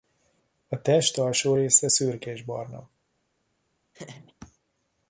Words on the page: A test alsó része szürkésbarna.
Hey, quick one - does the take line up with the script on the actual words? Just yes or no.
yes